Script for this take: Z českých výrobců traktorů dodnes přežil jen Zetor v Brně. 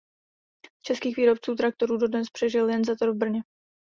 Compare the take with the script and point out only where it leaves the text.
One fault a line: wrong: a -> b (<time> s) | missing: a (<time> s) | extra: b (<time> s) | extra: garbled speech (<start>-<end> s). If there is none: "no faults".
no faults